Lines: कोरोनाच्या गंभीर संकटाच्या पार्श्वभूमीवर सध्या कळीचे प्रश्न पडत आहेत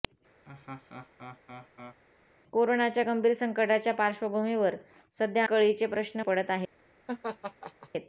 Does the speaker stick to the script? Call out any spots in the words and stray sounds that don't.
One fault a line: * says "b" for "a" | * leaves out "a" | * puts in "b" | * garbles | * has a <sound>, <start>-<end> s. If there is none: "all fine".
* has a laugh, 0.4-2.0 s
* has a laugh, 7.1-7.9 s